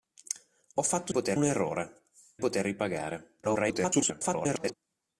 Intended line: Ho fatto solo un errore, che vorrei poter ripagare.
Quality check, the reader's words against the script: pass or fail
fail